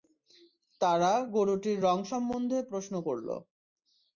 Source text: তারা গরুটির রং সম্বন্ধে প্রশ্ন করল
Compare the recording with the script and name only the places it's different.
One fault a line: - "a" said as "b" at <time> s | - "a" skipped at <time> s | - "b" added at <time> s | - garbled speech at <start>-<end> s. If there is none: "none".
none